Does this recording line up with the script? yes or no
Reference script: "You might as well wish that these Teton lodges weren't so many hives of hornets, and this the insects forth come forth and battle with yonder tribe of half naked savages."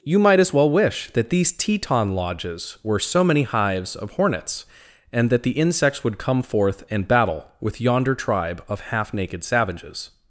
no